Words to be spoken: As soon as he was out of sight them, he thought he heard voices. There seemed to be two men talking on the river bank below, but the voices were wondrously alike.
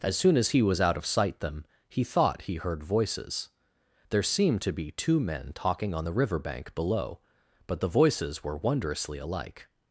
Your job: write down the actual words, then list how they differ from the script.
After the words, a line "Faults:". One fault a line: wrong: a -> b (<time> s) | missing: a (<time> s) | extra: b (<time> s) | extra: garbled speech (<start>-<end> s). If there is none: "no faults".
As soon as he was out of sight them, he thought he heard voices. There seemed to be two men talking on the river bank below, but the voices were wondrously alike.
Faults:
no faults